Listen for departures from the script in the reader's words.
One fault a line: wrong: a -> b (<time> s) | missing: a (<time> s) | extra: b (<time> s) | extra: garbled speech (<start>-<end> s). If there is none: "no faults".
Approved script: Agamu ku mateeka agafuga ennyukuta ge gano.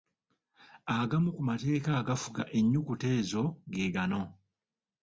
extra: ezo (3.2 s)